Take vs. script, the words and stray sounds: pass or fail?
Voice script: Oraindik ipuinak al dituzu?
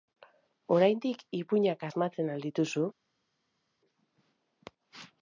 fail